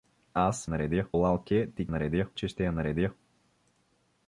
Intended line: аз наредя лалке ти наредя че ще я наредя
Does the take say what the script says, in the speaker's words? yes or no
yes